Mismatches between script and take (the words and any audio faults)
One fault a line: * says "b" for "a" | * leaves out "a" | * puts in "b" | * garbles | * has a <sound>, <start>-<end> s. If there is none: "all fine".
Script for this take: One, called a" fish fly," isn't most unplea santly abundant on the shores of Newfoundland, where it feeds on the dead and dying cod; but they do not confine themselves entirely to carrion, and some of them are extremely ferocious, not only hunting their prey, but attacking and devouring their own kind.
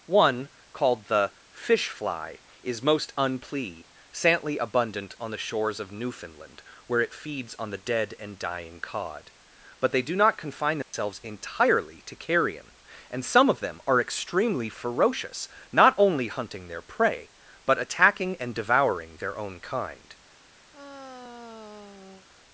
* says "the" for "a"
* says "is" for "isn't"
* has a dropout, 10.8-10.9 s
* has a sigh, 20.7-22.3 s